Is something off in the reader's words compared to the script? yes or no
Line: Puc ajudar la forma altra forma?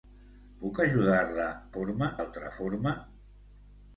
no